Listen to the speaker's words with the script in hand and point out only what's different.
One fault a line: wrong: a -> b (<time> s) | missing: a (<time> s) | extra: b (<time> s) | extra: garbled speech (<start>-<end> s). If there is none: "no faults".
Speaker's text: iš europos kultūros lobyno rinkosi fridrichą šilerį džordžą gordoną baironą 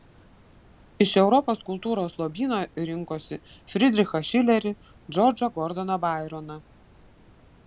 no faults